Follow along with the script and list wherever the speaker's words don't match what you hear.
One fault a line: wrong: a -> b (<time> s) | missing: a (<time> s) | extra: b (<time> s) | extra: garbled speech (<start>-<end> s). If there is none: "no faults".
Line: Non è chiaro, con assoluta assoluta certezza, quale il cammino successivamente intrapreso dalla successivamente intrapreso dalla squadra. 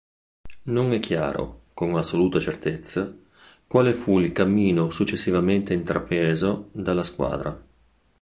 missing: assoluta (2.4 s)
extra: fu (3.9 s)
missing: successivamente intrapreso dalla (7.0 s)